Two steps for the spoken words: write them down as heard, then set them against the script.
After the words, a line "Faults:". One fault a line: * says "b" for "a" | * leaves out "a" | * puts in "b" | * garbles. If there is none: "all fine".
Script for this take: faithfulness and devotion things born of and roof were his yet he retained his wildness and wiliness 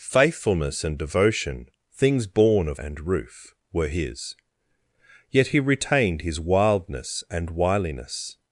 faithfulness and devotion things born of and roof were his yet he retained his wildness and wiliness
Faults:
all fine